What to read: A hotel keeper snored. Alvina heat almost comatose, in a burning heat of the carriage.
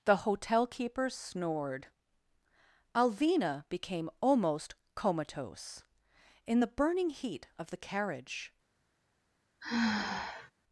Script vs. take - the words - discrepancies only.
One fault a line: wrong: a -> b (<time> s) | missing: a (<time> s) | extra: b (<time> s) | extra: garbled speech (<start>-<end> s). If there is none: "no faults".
wrong: A -> The (0.1 s)
wrong: heat -> became (3.7 s)
wrong: a -> the (6.6 s)